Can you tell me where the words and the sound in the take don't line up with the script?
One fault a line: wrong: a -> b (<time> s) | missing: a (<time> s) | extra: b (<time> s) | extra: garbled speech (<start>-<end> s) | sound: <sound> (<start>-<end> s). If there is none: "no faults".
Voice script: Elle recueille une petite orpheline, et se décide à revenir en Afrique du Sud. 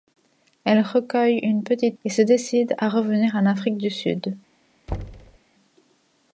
missing: orpheline (2.0 s)
sound: thud (4.9-5.4 s)